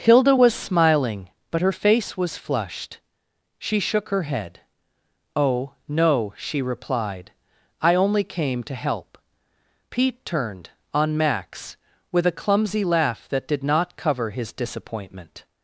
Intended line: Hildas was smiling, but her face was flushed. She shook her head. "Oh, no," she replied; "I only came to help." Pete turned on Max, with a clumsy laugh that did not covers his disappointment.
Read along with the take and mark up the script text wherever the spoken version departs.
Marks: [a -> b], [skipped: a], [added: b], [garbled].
[Hildas -> Hilda] was smiling, but her face was flushed. She shook her head. "Oh, no," she replied; "I only came to help." Pete turned on Max, with a clumsy laugh that did not [covers -> cover] his disappointment.